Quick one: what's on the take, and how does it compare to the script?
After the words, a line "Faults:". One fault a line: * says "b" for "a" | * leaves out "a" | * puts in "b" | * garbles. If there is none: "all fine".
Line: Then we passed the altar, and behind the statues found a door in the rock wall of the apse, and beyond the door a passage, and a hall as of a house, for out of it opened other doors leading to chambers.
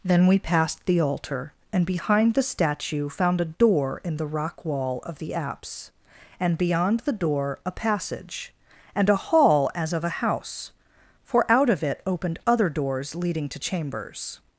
Then we passed the altar, and behind the statue found a door in the rock wall of the apse, and beyond the door a passage, and a hall as of a house, for out of it opened other doors leading to chambers.
Faults:
* says "statue" for "statues"